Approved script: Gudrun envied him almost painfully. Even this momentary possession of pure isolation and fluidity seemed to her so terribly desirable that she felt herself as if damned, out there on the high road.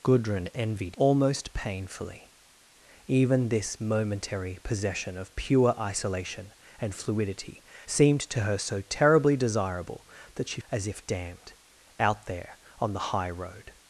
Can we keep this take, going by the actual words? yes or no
no